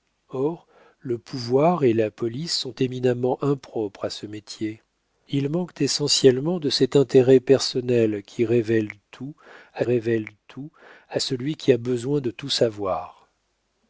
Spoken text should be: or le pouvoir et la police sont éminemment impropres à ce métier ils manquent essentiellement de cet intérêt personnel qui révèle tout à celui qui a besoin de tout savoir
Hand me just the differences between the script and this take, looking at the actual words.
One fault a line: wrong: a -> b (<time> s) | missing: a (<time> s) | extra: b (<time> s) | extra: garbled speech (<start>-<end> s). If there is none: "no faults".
extra: révèle tout à (9.8 s)